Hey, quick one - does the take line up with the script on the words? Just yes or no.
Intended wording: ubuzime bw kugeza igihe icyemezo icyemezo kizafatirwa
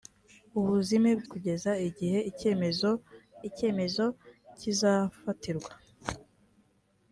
yes